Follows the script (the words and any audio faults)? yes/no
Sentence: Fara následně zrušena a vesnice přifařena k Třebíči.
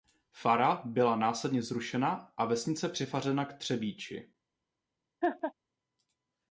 no